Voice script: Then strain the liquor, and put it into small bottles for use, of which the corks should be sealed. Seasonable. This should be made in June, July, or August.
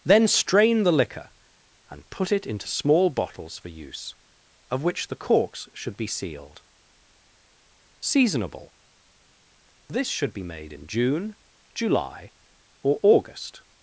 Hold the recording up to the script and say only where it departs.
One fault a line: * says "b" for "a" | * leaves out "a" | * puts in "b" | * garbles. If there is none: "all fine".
all fine